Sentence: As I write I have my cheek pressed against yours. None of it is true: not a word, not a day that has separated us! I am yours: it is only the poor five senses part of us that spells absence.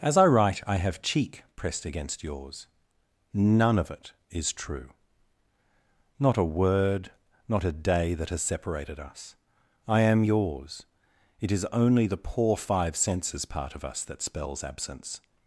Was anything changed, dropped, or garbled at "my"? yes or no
yes